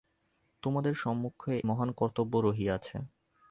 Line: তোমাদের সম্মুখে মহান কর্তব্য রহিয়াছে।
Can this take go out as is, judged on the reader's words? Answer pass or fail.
pass